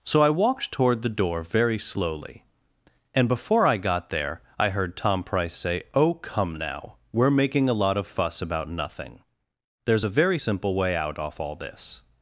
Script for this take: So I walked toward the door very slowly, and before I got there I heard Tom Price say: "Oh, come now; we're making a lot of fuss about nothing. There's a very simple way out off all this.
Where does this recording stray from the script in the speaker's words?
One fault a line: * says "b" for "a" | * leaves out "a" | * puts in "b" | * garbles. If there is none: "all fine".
all fine